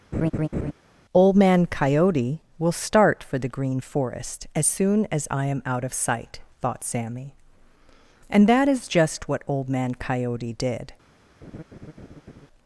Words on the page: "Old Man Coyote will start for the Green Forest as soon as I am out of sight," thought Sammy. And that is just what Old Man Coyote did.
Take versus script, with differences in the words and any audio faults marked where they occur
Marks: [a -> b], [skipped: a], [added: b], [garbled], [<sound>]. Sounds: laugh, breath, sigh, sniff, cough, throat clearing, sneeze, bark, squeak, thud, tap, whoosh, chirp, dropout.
[laugh] "Old Man Coyote will start for the Green Forest as soon as I am out of sight," thought Sammy. And that is just what Old Man Coyote did. [laugh]